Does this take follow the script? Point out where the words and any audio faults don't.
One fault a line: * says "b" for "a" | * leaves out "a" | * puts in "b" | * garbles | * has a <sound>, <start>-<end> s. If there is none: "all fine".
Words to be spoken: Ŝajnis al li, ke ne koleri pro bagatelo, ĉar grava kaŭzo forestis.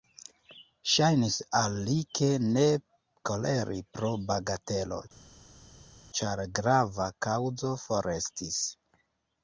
all fine